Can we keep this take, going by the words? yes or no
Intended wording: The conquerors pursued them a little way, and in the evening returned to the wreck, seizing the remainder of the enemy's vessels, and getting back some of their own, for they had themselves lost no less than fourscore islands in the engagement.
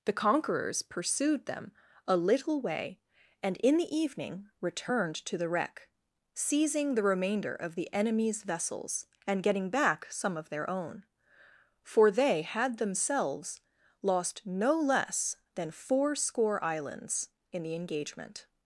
yes